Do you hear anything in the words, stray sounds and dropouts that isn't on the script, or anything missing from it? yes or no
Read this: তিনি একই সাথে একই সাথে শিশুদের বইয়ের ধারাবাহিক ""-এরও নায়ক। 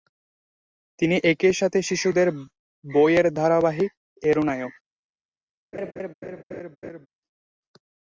yes